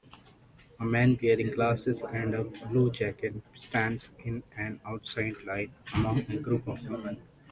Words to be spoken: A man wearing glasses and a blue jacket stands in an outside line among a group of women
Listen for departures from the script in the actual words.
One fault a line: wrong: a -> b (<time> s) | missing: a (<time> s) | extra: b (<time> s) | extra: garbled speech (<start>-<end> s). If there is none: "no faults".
no faults